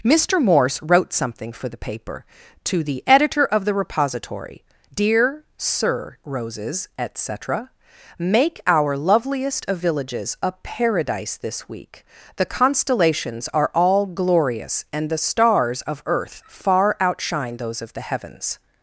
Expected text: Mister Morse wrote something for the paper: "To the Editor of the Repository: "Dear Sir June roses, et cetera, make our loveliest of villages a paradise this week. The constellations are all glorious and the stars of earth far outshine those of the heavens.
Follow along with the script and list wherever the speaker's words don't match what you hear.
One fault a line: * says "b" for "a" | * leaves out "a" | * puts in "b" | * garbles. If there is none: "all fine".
* leaves out "June"